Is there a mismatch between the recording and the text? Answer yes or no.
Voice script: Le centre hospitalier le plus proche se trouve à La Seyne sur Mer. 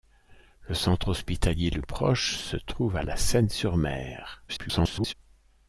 yes